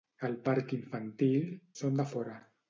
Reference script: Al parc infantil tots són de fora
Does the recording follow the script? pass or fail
fail